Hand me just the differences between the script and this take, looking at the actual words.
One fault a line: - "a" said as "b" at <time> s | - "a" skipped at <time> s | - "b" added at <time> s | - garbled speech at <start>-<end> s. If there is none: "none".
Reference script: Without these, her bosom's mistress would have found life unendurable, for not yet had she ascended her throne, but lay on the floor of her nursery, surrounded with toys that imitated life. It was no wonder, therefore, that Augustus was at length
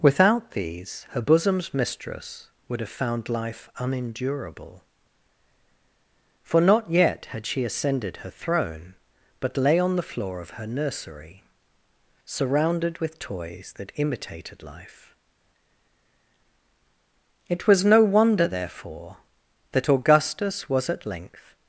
none